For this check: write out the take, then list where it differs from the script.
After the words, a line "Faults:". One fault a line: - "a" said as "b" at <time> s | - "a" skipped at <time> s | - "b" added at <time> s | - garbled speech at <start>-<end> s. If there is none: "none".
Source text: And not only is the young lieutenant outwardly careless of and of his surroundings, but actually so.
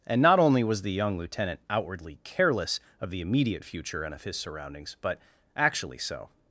And not only was the young lieutenant outwardly careless of the immediate future and of his surroundings, but actually so.
Faults:
- "is" said as "was" at 0.6 s
- "the immediate future" added at 3.1 s